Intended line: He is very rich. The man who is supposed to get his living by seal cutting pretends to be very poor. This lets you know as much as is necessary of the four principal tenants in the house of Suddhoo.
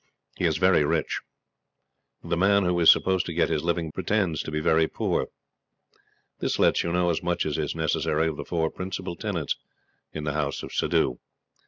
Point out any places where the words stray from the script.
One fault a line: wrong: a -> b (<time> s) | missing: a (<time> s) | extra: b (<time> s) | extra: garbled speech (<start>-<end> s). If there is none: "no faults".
missing: by seal cutting (3.9 s)